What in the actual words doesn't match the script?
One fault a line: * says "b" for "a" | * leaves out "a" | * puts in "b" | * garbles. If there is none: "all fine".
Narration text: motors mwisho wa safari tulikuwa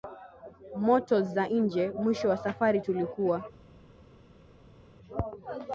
* puts in "za nje"